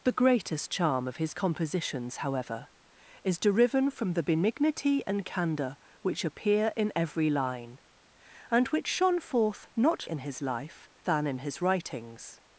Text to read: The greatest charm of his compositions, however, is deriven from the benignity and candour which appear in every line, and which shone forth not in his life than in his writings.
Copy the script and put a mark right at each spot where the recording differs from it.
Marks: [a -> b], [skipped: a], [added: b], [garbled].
The greatest charm of his compositions, however, is deriven from the benignity and candour which appear in every line, and which shone forth not in his life than in his writings.